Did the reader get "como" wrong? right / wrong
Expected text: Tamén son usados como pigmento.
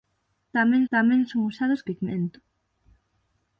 wrong